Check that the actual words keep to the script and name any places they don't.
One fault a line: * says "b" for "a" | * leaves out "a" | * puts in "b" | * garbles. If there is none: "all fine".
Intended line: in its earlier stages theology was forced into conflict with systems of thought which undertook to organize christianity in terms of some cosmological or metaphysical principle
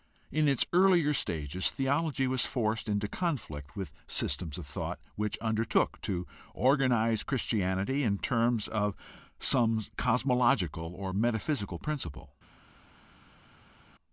all fine